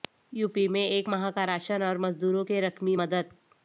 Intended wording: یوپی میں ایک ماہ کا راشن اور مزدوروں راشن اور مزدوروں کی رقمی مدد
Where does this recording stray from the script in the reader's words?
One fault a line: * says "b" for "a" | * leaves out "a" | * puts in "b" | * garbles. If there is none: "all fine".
* leaves out "راشن اور مزدوروں"